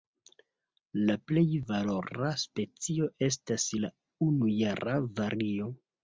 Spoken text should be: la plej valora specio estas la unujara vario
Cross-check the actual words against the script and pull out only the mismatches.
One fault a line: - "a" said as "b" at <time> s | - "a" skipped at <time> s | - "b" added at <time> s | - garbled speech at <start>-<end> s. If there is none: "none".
none